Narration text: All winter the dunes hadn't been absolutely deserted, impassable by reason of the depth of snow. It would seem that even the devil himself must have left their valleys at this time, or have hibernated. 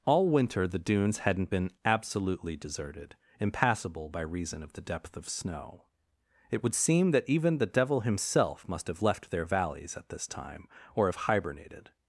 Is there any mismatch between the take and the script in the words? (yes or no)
no